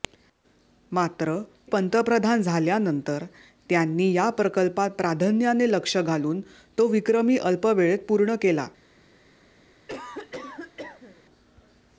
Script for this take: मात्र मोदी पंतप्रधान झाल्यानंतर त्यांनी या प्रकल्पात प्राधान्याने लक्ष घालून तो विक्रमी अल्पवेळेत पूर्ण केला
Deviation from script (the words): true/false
true